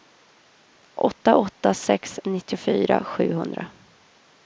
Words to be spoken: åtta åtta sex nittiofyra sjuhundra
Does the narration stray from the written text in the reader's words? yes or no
no